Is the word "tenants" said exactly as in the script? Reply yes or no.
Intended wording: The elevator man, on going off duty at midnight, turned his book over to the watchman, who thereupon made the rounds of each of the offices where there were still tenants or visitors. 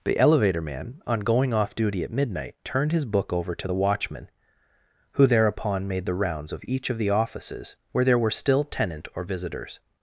no